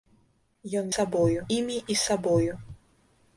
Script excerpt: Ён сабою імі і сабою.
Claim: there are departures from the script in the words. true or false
false